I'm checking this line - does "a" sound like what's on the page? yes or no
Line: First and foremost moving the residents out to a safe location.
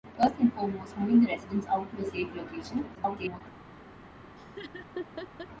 yes